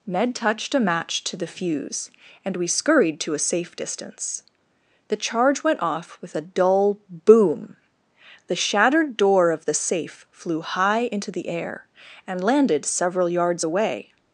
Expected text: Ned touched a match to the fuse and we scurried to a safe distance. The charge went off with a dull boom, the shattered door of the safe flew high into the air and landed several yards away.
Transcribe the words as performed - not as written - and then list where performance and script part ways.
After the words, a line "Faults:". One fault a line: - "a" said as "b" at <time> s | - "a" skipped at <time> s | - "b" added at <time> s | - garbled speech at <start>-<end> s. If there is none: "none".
Ned touched a match to the fuse and we scurried to a safe distance. The charge went off with a dull boom, the shattered door of the safe flew high into the air and landed several yards away.
Faults:
none